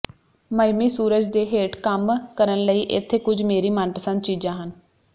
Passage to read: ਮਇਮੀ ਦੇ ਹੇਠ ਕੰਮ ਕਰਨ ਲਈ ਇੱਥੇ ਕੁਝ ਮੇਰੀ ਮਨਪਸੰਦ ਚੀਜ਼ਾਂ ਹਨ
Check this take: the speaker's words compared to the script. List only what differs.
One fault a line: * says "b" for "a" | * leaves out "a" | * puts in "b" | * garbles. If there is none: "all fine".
* puts in "ਸੂਰਜ"